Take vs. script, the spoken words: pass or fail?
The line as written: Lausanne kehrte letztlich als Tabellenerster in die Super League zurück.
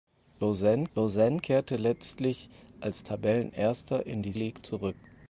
fail